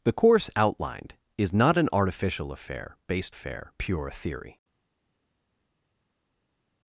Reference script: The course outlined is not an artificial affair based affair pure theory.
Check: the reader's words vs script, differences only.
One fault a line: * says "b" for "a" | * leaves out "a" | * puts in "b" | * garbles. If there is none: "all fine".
all fine